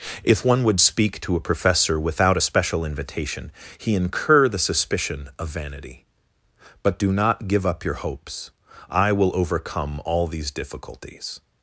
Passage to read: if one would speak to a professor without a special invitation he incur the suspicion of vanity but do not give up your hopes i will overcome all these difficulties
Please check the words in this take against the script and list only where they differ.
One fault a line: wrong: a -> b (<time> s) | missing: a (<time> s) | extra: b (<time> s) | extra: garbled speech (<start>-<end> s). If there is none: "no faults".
no faults